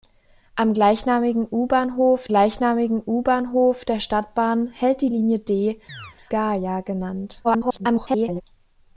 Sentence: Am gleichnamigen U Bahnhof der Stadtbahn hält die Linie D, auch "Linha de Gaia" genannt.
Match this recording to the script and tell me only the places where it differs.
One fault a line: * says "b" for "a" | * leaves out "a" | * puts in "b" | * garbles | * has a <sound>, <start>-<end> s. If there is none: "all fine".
* puts in "gleichnamigen U Bahnhof"
* leaves out "auch Linha de"
* has a chirp, 5.9-6.2 s
* garbles